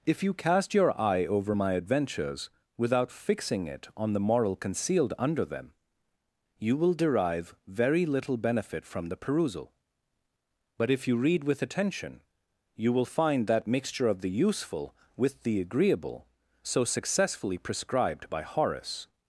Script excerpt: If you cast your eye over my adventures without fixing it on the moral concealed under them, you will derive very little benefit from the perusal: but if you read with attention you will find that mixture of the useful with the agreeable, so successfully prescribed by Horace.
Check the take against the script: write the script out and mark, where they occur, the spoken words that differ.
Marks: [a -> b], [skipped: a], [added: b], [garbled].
If you cast your eye over my adventures without fixing it on the moral concealed under them, you will derive very little benefit from the perusal: but if you read with attention you will find that mixture of the useful with the agreeable, so successfully prescribed by Horace.